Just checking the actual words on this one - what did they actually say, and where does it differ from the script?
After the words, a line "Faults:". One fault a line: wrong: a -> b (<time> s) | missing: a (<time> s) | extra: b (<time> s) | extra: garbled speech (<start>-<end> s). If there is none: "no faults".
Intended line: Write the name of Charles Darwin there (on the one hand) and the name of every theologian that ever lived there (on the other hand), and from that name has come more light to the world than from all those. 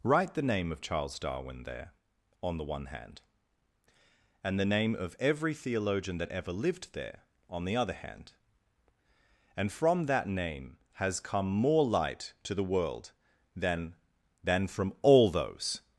Write the name of Charles Darwin there (on the one hand) and the name of every theologian that ever lived there (on the other hand), and from that name has come more light to the world than than from all those.
Faults:
extra: than (14.4 s)